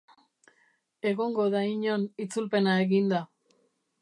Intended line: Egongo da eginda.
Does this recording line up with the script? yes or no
no